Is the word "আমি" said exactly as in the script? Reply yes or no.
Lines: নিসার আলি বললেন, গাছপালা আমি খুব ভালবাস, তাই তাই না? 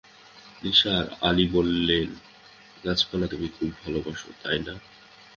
no